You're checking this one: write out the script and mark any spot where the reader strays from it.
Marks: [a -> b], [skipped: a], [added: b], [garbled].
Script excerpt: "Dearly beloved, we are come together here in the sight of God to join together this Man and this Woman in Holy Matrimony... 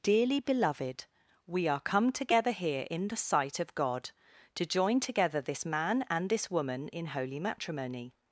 "Dearly beloved, we are come together here in the sight of God to join together this Man and this Woman in Holy Matrimony...